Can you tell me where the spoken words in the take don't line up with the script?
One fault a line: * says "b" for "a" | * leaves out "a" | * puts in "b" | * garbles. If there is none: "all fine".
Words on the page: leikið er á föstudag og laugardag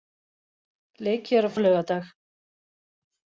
* leaves out "föstudag"